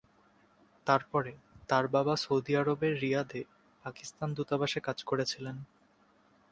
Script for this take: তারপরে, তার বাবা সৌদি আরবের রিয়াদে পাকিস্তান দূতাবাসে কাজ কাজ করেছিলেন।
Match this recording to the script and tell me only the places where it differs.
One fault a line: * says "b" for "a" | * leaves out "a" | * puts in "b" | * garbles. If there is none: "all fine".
* leaves out "কাজ"